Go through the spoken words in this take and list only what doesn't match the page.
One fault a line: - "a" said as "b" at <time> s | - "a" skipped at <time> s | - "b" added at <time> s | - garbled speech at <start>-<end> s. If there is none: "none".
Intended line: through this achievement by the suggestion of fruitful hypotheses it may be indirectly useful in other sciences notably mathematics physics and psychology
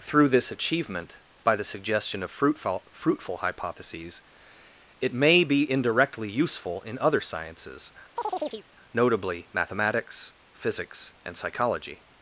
- "fruitful" added at 2.9 s